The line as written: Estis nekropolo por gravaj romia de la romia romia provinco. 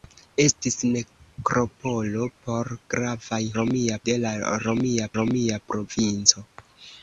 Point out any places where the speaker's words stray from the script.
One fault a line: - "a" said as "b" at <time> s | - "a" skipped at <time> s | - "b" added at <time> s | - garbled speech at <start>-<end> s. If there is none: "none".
none